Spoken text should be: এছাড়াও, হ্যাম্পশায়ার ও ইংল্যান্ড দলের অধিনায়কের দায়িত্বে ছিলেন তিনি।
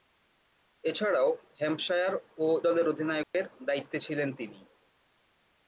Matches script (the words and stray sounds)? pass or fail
fail